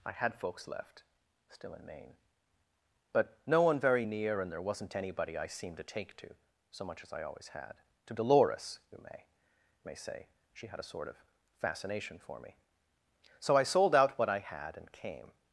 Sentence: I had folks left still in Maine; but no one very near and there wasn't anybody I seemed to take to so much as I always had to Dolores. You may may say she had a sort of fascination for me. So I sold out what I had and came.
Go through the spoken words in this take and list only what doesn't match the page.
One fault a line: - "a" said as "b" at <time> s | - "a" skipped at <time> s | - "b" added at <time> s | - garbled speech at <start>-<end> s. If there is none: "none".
none